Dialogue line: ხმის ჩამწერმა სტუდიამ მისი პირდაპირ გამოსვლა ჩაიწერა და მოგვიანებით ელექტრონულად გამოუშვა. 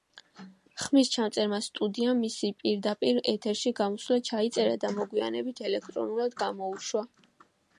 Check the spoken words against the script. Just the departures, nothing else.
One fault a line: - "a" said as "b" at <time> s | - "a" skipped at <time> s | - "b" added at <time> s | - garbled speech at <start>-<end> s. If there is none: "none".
- "ეთერში" added at 3.3 s